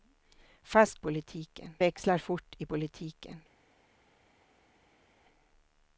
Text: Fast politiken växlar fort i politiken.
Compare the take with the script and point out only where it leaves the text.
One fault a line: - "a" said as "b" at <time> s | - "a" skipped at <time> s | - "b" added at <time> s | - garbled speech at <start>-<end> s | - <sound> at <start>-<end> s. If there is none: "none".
none